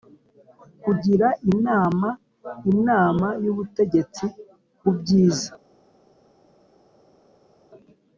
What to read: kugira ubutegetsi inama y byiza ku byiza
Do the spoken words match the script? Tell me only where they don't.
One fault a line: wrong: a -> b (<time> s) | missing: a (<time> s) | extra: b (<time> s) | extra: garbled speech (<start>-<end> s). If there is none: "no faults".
wrong: ubutegetsi -> inama (1.5 s)
wrong: byiza -> ubutegetsi (3.5 s)